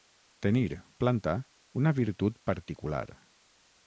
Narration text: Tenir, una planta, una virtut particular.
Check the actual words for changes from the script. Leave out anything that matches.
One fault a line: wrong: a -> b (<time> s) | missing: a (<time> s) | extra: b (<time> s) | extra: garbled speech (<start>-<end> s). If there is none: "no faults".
missing: una (0.8 s)